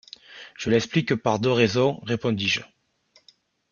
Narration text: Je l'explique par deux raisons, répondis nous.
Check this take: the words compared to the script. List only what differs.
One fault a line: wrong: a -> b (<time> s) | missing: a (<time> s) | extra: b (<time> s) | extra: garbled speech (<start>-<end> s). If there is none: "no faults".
wrong: nous -> je (2.5 s)